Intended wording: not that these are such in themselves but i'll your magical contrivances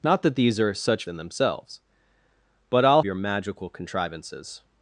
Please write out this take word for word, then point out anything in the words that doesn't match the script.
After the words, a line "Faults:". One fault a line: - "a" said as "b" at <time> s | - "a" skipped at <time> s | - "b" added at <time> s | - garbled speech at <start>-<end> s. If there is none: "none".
not that these are such in themselves but i'll your magical contrivances
Faults:
none